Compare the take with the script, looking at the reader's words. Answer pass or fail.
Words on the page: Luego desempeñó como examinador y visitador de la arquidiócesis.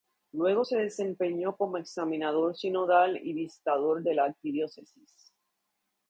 fail